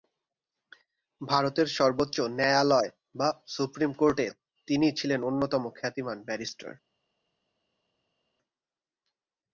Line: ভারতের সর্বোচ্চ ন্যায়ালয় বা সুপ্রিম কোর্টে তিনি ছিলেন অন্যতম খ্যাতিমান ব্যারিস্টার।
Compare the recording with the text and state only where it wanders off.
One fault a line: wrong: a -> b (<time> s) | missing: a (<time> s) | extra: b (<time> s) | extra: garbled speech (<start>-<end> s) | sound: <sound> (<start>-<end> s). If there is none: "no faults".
no faults